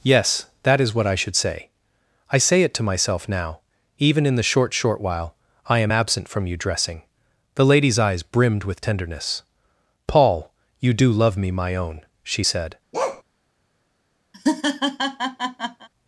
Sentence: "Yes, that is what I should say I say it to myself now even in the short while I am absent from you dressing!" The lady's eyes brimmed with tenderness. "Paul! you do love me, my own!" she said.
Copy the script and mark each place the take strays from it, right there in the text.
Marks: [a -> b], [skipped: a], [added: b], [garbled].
"Yes, that is what I should say I say it to myself now even in the short [added: short] while I am absent from you dressing!" The lady's eyes brimmed with tenderness. "Paul! you do love me, my own!" she said.